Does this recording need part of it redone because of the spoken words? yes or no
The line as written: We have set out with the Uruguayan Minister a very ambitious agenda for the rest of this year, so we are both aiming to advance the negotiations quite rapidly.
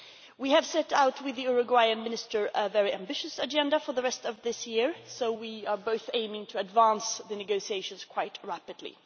no